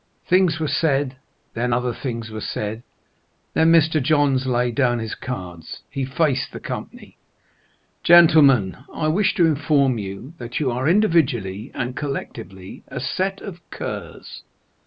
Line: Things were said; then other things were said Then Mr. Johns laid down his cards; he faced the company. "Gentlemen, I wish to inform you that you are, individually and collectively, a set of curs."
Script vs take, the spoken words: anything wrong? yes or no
no